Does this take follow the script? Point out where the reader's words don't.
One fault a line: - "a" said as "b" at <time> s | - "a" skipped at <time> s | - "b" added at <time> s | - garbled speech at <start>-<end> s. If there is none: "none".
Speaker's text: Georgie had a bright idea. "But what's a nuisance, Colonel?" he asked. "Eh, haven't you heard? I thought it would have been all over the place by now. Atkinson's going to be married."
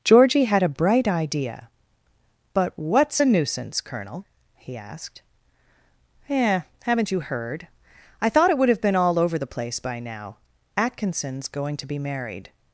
none